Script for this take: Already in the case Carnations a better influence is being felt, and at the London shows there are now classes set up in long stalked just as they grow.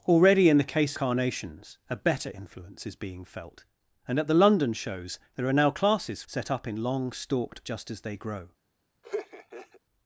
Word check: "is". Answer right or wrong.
right